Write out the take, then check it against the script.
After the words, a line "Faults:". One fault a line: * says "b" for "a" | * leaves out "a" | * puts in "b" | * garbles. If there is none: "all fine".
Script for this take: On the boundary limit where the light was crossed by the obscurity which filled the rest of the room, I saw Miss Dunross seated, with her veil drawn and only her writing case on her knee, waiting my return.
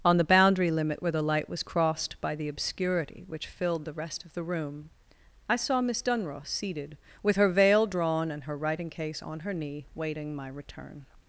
On the boundary limit where the light was crossed by the obscurity which filled the rest of the room, I saw Miss Dunross seated, with her veil drawn and her writing case on her knee, waiting my return.
Faults:
* leaves out "only"